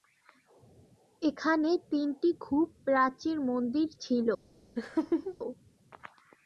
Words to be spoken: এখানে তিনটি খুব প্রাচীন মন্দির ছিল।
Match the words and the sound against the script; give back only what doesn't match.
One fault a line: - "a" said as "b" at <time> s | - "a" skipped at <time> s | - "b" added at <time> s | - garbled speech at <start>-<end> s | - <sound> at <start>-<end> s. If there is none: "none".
- laugh at 4.8-5.4 s